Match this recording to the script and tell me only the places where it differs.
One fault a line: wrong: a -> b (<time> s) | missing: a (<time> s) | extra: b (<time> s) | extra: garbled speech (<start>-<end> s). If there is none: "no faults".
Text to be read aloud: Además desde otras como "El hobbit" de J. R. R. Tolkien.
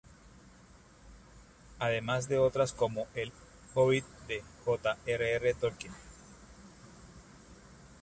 wrong: desde -> de (2.3 s)